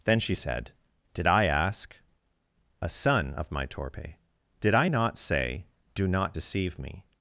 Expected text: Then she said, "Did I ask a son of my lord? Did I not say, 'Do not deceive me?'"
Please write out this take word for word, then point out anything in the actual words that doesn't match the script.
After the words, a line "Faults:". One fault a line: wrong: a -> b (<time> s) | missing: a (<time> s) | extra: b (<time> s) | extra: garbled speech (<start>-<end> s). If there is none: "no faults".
Then she said, "Did I ask a son of my torpe? Did I not say, 'Do not deceive me?'"
Faults:
wrong: lord -> torpe (3.7 s)